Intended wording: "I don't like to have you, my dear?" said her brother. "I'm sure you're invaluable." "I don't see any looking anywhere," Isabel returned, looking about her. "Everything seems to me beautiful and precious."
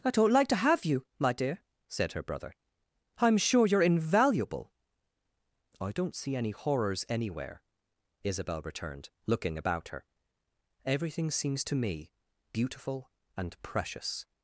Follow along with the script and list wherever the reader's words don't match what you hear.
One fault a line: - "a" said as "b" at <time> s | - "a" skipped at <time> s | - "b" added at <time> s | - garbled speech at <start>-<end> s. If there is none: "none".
- "looking" said as "horrors" at 6.5 s